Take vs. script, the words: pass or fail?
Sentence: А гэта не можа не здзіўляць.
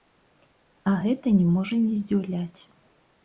pass